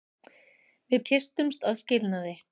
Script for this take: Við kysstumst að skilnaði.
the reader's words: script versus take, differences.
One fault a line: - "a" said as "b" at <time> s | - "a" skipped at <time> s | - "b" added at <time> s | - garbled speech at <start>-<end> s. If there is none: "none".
none